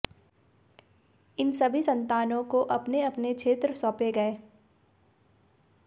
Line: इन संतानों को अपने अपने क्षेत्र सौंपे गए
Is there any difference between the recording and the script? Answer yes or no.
yes